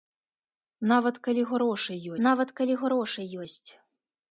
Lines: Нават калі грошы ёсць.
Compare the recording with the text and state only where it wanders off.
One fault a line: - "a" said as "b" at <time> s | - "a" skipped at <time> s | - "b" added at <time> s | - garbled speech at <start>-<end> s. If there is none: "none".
- "нават калі грошы" added at 2.3 s